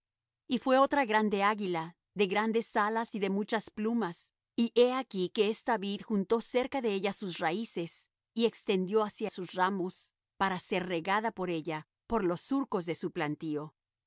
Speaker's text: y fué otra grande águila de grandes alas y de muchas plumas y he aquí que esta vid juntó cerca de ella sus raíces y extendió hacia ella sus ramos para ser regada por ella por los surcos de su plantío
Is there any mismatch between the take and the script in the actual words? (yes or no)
yes